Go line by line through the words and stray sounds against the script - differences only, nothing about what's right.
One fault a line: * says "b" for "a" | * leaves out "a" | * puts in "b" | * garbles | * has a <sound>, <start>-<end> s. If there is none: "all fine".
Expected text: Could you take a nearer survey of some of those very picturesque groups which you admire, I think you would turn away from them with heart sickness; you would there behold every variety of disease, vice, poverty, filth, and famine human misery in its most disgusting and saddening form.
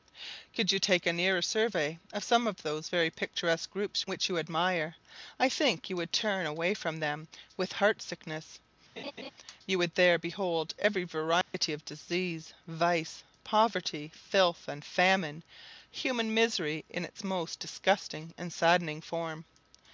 * has a laugh, 9.0-9.3 s
* has a dropout, 11.4-11.5 s